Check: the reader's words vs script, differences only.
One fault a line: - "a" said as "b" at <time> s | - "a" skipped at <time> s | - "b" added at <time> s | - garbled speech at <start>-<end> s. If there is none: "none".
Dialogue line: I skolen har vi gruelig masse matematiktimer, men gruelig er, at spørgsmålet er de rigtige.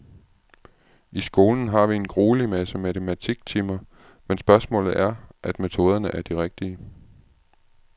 - "en" added at 1.9 s
- "gruelig" said as "spørgsmålet" at 4.4 s
- "spørgsmålet" said as "metoderne" at 5.6 s